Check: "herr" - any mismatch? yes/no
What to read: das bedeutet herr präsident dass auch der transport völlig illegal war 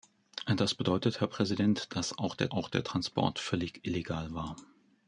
no